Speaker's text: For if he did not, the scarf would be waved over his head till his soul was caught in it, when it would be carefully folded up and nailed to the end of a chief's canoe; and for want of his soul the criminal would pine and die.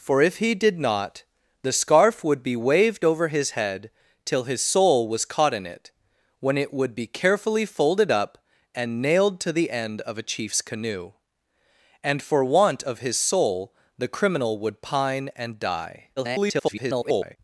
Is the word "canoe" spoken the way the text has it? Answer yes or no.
yes